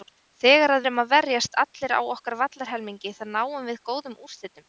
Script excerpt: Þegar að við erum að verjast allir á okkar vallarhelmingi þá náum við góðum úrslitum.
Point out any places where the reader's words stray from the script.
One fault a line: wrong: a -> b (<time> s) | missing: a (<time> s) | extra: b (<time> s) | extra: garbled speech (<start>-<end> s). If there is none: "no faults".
missing: við (0.9 s)